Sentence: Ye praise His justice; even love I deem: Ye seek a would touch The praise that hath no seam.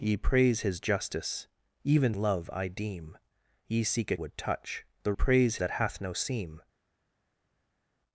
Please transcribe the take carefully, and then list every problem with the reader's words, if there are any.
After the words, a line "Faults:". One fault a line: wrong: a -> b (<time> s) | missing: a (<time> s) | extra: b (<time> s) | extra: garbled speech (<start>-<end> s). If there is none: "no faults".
Ye praise His justice; even love I deem: Ye seek a would touch The praise that hath no seam.
Faults:
no faults